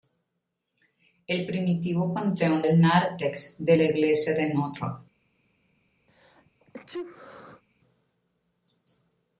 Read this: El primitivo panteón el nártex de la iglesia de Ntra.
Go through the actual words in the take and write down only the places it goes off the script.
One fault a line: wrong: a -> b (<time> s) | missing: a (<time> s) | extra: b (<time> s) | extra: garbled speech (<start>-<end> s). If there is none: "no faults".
no faults